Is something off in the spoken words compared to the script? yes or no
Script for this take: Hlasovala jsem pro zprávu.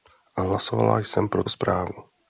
no